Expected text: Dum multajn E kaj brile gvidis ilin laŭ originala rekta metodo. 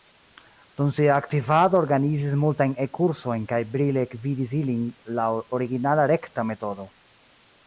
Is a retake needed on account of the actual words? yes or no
yes